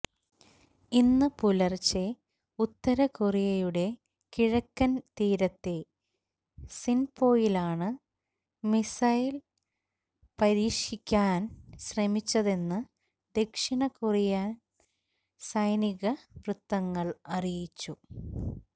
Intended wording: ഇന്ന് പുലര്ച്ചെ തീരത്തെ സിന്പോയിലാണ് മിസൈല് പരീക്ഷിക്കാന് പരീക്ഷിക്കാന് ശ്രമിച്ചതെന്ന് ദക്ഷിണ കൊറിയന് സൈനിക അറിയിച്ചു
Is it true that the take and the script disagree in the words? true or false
true